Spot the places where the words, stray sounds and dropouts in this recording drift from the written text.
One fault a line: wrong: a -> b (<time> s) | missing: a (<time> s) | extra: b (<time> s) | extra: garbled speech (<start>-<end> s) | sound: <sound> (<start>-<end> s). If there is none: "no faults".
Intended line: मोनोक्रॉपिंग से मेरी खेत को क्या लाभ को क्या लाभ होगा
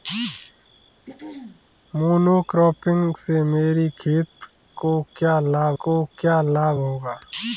sound: throat clearing (1.0-1.6 s)